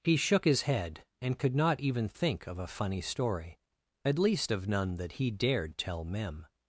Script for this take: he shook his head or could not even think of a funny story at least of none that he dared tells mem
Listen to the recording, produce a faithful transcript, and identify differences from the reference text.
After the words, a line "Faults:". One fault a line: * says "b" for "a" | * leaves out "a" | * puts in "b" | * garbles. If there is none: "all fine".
he shook his head and could not even think of a funny story at least of none that he dared tell mem
Faults:
* says "and" for "or"
* says "tell" for "tells"